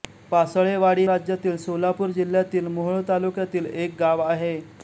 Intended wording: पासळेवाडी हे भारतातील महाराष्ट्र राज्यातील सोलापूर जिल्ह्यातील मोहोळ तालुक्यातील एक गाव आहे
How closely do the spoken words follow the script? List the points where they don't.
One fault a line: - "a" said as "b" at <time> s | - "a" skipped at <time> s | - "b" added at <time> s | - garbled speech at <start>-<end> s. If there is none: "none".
- "हे भारतातील महाराष्ट्र" skipped at 1.0 s